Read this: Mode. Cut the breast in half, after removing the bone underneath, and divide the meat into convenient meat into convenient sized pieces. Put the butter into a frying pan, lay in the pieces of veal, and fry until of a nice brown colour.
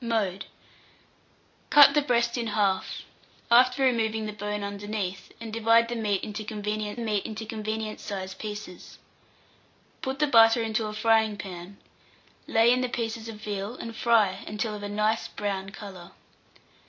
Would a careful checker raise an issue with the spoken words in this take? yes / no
no